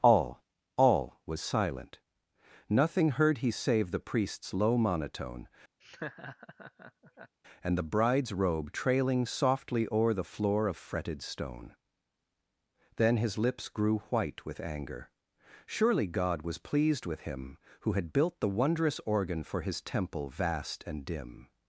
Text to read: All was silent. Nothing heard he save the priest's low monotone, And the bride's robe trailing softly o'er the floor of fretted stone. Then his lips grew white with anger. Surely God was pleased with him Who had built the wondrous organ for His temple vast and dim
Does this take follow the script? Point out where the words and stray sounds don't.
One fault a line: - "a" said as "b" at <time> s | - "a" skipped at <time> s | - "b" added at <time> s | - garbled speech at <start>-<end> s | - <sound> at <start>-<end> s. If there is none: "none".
- "all" added at 0.8 s
- laugh at 5.8-7.4 s